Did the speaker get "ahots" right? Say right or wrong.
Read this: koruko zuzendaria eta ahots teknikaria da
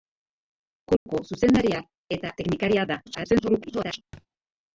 wrong